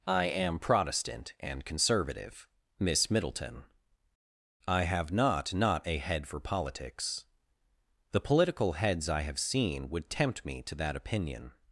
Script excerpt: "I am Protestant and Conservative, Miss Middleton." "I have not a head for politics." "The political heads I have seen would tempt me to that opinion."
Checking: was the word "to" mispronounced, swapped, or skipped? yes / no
no